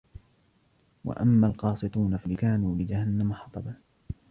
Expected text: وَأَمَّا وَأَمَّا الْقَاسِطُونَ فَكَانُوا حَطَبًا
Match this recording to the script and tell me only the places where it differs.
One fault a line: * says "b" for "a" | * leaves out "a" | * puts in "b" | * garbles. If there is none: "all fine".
* leaves out "وَأَمَّا"
* puts in "لِجَهَنَّمَ"